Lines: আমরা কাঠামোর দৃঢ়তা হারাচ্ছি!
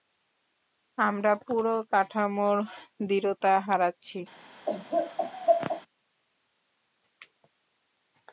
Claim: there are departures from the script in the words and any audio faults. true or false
true